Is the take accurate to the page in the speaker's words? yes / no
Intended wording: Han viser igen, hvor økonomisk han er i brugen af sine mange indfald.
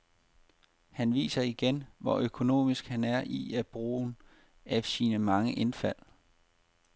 yes